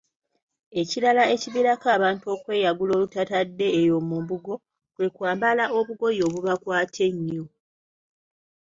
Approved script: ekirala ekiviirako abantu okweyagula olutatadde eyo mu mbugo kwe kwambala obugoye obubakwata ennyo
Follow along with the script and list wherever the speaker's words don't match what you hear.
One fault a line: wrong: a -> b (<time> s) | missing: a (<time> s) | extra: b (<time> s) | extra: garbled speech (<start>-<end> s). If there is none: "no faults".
no faults